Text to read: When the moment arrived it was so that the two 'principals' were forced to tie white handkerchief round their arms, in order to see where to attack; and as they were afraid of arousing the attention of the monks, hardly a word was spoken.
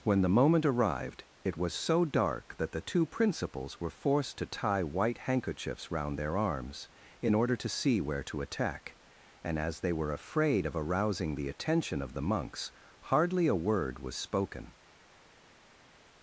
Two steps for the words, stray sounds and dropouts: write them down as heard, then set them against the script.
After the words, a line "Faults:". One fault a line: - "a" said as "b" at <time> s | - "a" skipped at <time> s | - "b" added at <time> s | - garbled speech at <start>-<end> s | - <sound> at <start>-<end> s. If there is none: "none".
When the moment arrived it was so dark that the two 'principals' were forced to tie white handkerchiefs round their arms, in order to see where to attack; and as they were afraid of arousing the attention of the monks, hardly a word was spoken.
Faults:
- "dark" added at 2.0 s
- "handkerchief" said as "handkerchiefs" at 5.3 s